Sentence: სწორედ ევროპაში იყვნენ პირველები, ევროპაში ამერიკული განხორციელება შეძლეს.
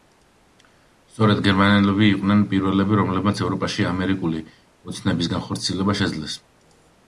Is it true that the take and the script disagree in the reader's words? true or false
true